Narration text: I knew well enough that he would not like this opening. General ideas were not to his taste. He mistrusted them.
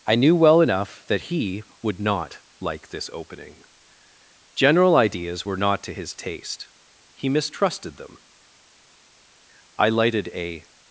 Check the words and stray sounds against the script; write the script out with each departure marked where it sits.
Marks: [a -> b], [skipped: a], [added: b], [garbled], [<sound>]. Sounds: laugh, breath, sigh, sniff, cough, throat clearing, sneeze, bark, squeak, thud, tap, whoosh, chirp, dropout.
I knew well enough that he would not like this opening. General ideas were not to his taste. He mistrusted them. [added: I lighted a]